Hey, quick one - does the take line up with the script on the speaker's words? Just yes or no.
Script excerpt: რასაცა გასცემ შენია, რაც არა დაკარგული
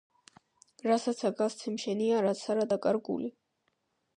yes